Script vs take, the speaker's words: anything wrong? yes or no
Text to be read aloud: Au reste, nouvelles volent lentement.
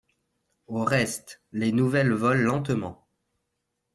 yes